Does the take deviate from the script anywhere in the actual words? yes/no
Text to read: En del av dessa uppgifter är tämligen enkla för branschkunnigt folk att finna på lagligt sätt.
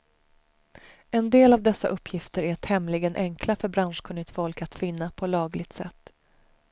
no